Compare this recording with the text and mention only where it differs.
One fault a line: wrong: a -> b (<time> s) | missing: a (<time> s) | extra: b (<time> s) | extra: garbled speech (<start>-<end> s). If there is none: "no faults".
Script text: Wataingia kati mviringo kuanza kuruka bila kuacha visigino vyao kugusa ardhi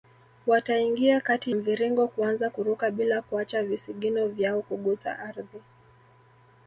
no faults